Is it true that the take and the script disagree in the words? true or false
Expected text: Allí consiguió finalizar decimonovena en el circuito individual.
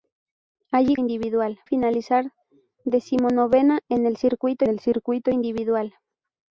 true